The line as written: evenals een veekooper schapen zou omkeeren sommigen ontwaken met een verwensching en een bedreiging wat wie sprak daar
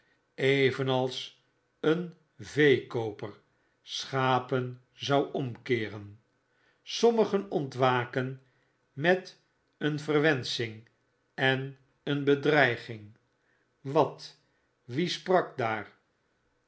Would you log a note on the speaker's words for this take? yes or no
no